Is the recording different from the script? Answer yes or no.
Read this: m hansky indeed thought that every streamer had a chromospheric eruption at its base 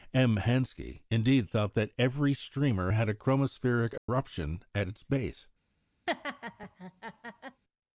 no